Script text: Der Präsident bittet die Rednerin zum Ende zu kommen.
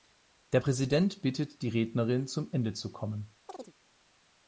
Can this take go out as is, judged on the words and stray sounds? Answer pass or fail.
fail